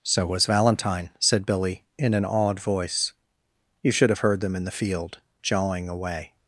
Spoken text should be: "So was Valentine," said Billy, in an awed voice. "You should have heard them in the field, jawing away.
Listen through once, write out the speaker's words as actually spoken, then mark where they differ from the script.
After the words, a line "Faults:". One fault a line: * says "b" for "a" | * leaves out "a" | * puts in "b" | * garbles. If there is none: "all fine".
"So was Valentine," said Billy, in an awed voice. "You should have heard them in the field, jawing away.
Faults:
all fine